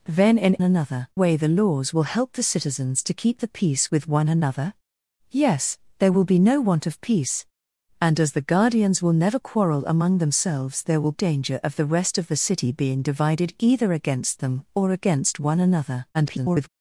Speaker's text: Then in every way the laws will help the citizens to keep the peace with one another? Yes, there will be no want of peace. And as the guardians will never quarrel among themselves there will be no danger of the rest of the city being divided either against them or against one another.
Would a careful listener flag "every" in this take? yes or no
yes